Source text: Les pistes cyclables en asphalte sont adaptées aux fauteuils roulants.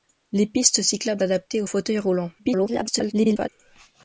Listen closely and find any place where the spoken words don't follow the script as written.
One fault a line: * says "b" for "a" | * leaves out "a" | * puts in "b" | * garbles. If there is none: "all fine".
* leaves out "en asphalte sont"
* garbles